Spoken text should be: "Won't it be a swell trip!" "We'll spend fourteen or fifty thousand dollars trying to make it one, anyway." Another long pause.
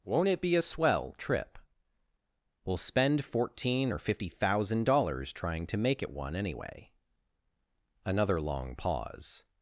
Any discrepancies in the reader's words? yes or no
no